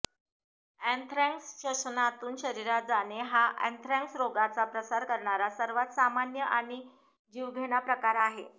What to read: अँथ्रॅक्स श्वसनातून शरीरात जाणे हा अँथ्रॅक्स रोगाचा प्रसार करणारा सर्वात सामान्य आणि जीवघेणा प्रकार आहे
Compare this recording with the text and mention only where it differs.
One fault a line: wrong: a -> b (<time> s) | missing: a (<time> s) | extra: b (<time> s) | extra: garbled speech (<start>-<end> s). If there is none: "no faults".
no faults